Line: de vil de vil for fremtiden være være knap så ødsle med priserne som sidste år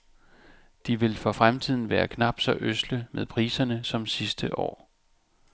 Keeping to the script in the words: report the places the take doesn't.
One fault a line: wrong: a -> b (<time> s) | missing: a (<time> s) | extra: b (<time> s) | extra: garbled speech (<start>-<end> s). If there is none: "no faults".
missing: de vil (1.1 s)
missing: være (2.1 s)